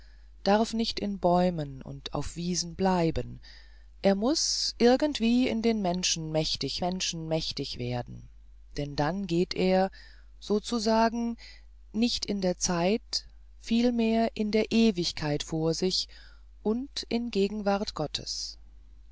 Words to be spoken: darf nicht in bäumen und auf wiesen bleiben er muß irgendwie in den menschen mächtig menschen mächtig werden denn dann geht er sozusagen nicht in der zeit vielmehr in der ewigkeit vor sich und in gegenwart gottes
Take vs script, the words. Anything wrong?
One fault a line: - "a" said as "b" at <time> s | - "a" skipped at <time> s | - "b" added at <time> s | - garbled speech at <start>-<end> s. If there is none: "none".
none